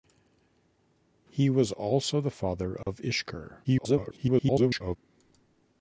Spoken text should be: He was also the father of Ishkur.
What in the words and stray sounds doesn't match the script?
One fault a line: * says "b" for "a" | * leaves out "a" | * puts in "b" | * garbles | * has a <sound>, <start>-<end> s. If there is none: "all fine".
* has a dropout, 2.8-2.9 s
* garbles